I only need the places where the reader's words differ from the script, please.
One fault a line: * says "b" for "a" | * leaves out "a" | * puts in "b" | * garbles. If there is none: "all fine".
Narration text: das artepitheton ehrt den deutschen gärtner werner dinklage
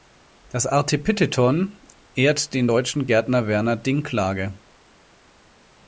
all fine